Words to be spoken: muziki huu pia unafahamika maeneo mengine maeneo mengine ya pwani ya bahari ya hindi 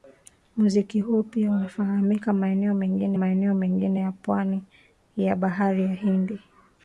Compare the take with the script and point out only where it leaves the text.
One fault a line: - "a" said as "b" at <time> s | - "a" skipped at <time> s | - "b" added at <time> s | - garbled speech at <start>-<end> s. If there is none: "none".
none